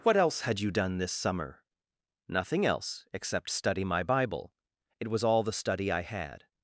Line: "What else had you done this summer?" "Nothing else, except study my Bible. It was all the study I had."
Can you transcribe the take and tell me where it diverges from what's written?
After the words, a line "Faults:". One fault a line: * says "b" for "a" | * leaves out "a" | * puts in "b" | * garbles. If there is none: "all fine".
"What else had you done this summer?" "Nothing else, except study my Bible. It was all the study I had."
Faults:
all fine